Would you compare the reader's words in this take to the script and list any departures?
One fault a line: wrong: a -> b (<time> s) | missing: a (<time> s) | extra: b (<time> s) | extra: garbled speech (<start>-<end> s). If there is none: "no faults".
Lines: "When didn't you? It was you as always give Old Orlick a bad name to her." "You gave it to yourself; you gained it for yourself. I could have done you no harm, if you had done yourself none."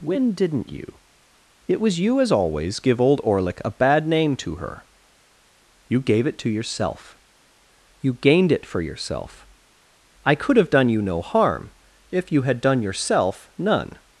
no faults